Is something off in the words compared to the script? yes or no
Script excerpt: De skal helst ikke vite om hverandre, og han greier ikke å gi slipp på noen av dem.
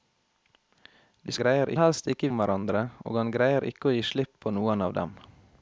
yes